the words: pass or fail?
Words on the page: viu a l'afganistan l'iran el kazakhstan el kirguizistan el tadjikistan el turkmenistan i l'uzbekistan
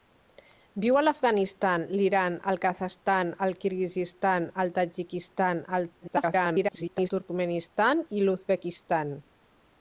fail